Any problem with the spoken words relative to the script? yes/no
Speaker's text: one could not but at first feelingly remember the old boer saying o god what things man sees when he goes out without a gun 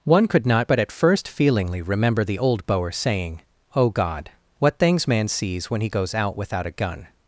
no